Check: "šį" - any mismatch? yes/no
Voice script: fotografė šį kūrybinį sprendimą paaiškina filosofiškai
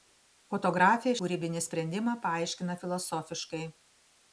yes